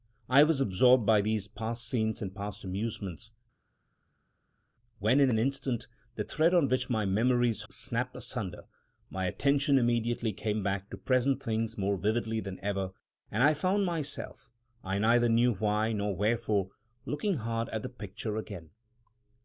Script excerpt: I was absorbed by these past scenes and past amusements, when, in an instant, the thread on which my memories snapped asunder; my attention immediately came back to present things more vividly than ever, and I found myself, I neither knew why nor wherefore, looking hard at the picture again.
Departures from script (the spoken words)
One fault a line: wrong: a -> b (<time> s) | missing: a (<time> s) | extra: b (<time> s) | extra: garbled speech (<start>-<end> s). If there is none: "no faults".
no faults